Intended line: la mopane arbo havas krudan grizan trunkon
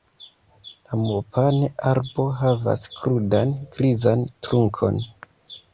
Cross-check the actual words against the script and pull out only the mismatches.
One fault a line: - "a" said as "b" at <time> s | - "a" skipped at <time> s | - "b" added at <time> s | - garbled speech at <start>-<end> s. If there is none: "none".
none